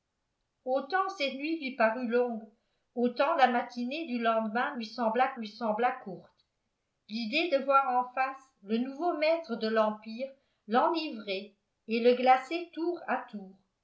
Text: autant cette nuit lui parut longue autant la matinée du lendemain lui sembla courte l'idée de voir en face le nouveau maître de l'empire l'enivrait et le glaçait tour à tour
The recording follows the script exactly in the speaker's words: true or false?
false